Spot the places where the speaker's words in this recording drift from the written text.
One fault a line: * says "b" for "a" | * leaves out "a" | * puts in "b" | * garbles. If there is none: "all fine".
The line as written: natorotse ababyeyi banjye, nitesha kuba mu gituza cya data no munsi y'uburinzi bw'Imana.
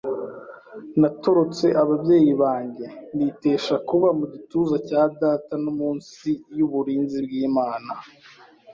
all fine